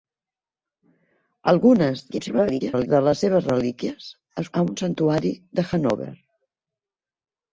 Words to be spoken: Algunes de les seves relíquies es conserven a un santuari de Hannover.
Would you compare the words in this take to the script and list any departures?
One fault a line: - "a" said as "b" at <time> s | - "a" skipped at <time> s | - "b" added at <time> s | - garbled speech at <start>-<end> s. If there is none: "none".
- garbled speech at 2.1-2.9 s
- "conserven" skipped at 4.5 s